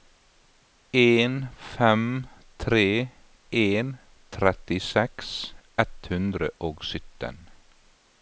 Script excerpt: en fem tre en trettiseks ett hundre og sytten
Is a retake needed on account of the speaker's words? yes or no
no